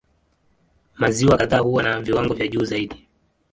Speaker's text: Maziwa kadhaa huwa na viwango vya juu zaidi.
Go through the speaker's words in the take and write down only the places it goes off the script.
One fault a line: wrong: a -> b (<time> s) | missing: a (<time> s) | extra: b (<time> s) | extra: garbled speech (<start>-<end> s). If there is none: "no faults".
no faults